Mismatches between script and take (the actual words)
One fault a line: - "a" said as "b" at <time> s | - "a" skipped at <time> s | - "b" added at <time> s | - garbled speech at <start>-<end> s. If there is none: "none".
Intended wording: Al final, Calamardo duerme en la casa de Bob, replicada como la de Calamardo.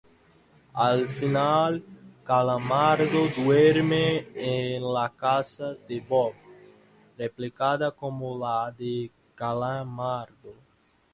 none